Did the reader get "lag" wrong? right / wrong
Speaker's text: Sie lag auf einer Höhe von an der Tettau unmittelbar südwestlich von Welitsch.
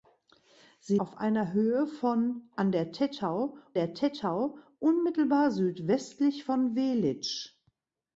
wrong